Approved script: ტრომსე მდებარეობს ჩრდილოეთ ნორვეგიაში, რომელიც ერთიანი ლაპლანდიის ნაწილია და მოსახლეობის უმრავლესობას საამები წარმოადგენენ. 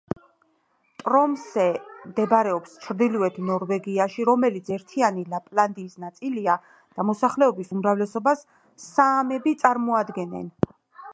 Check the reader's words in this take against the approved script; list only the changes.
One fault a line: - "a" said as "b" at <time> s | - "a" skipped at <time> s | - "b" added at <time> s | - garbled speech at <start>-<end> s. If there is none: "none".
none